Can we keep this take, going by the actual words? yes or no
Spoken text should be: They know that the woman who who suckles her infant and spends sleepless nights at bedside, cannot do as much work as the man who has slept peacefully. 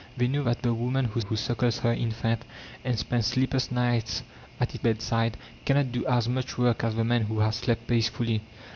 yes